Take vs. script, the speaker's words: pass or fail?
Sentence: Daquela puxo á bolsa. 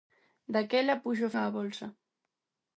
pass